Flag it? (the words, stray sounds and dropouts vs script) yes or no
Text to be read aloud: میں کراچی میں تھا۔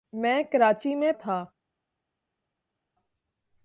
no